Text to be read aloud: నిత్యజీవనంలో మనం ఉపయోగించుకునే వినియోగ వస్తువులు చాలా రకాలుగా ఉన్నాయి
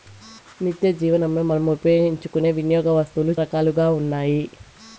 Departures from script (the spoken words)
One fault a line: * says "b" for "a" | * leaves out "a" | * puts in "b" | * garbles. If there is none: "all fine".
* leaves out "చాలా"